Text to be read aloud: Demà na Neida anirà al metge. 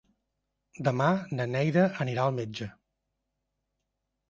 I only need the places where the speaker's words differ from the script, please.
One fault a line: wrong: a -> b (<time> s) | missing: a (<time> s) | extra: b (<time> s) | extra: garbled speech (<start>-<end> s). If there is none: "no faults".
no faults